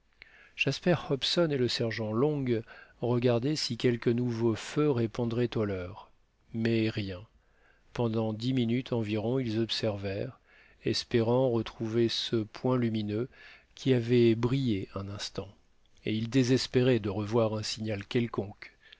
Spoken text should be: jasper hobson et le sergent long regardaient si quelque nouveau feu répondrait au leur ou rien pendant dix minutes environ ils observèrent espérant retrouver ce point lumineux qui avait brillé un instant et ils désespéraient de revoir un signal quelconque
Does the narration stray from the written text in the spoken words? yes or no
yes